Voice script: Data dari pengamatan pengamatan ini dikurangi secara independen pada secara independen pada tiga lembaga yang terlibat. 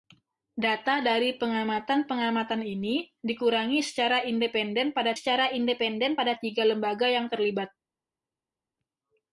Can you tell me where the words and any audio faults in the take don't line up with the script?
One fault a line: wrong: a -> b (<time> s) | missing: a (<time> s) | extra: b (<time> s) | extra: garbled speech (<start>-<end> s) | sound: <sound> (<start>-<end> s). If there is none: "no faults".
no faults